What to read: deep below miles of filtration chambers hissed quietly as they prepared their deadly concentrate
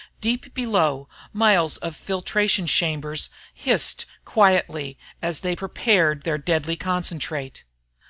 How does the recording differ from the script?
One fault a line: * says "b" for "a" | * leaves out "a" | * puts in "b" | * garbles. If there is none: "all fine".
all fine